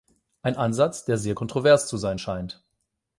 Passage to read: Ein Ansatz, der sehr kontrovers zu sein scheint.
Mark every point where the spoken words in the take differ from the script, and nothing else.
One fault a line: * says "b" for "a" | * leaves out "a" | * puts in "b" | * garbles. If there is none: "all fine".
all fine